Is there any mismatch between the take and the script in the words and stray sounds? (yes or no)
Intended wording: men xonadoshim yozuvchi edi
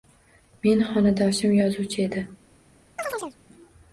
yes